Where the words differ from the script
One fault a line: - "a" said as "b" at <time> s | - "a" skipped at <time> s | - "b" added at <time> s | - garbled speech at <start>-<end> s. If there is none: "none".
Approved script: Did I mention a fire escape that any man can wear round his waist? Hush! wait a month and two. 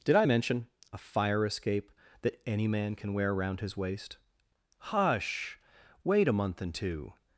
none